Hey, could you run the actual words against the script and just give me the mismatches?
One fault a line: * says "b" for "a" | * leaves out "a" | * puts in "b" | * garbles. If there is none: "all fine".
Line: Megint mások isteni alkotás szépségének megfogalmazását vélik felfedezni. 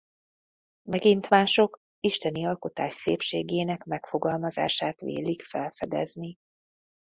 all fine